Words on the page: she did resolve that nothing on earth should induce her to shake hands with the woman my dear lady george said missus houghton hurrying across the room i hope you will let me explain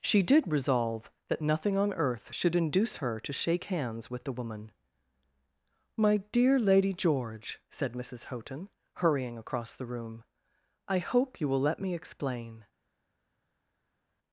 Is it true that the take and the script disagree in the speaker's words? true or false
false